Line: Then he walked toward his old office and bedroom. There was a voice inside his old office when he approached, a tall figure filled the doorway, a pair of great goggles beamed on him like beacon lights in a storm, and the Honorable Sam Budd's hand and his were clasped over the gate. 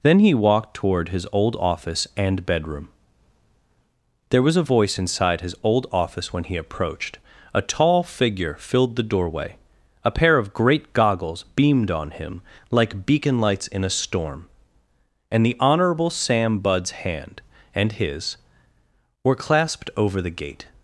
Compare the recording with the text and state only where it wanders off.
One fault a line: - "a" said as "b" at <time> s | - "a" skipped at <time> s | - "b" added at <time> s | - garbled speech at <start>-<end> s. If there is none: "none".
none